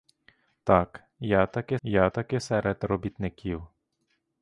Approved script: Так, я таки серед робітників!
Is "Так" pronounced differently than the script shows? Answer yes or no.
no